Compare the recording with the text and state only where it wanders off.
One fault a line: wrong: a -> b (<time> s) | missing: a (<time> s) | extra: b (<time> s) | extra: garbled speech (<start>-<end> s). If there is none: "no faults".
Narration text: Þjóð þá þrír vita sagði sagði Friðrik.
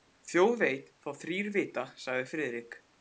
extra: veit (0.6 s)
missing: sagði (2.3 s)